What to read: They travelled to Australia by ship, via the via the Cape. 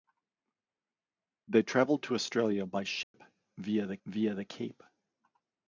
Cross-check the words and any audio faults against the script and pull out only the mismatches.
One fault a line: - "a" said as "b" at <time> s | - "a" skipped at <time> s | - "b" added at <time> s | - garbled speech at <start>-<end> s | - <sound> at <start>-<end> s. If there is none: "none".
- dropout at 3.0-3.1 s